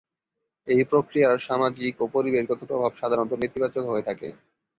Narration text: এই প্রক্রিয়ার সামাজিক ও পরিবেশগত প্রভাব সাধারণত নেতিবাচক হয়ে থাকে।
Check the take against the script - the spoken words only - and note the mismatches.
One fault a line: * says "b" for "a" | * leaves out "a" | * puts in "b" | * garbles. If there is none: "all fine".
all fine